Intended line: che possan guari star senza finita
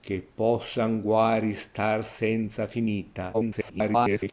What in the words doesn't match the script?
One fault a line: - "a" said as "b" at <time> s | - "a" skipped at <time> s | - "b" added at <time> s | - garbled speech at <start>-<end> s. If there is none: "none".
- garbled speech at 3.3-4.3 s